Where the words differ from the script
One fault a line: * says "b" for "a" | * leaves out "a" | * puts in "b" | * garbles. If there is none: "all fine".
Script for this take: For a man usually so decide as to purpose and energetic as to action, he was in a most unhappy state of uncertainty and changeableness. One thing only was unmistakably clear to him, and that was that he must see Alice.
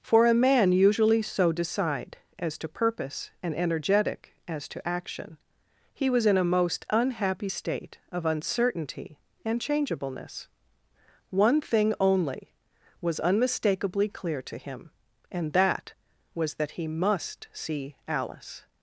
all fine